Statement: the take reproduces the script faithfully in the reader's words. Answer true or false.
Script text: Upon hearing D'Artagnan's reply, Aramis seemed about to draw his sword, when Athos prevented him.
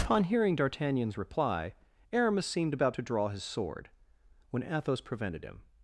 true